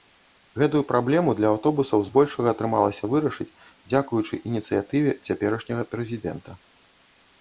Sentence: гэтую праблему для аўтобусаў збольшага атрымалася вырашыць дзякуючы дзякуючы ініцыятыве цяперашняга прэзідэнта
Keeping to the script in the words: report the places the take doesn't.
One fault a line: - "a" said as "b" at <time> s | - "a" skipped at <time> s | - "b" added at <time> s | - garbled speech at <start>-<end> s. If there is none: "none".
- "дзякуючы" skipped at 4.4 s